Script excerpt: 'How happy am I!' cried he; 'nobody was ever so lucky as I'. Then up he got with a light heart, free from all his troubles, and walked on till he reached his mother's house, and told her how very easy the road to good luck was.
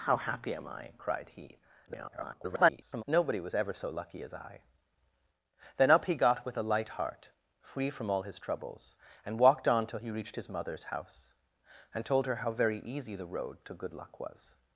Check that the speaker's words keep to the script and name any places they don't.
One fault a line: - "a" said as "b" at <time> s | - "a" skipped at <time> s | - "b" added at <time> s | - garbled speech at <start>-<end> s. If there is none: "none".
- garbled speech at 1.9-3.0 s